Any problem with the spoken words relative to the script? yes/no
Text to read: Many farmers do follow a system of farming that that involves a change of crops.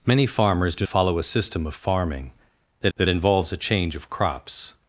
no